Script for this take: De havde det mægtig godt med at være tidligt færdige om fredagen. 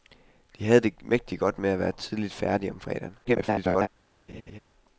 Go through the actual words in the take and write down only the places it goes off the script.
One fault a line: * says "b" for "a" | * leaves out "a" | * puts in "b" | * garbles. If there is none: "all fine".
* garbles